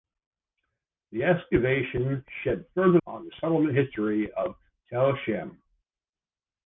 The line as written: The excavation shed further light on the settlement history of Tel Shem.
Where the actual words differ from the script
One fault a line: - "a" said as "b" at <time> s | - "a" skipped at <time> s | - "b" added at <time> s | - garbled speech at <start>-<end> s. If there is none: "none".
- "light" skipped at 3.0 s